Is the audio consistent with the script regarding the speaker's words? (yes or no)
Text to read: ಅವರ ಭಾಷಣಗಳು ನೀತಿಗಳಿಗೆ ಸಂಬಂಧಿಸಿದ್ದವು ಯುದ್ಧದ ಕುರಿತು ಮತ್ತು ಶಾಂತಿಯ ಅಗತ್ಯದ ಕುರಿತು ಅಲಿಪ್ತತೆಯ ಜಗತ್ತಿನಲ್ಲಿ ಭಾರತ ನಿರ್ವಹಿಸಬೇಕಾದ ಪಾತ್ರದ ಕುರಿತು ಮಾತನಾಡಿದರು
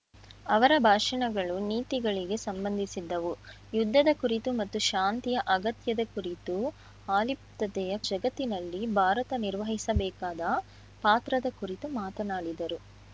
yes